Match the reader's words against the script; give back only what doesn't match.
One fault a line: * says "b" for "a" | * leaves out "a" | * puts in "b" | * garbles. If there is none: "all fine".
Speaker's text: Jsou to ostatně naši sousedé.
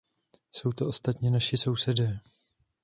all fine